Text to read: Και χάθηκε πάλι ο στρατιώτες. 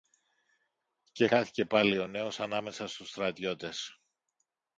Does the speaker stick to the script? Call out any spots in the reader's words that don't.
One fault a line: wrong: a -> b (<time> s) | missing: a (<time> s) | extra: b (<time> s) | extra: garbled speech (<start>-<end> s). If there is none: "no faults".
extra: νέος ανάμεσα στους (2.0 s)